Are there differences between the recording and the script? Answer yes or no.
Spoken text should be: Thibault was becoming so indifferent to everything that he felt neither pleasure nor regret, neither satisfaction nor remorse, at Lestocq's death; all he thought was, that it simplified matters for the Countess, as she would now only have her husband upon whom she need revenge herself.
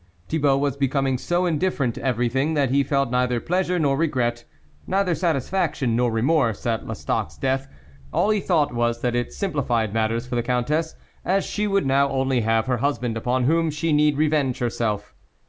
no